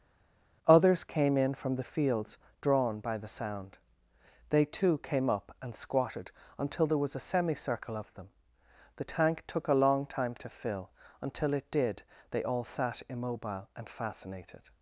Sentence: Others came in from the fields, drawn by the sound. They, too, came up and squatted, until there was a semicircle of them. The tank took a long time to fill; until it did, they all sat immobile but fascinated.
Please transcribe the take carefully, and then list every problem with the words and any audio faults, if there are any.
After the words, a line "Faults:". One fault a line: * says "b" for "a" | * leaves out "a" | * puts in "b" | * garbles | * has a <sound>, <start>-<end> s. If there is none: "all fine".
Others came in from the fields, drawn by the sound. They, too, came up and squatted, until there was a semicircle of them. The tank took a long time to fill; until it did, they all sat immobile and fascinated.
Faults:
* says "and" for "but"